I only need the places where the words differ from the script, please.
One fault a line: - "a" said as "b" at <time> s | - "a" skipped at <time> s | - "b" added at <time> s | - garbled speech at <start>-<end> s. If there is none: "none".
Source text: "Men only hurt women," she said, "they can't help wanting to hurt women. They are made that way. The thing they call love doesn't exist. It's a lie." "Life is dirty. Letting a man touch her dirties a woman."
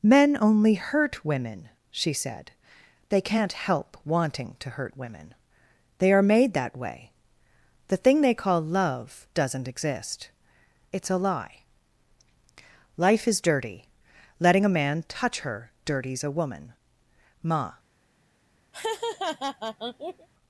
- "Ma" added at 17.4 s